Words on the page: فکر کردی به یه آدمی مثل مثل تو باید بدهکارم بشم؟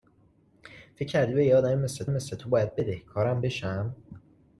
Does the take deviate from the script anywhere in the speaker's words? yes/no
no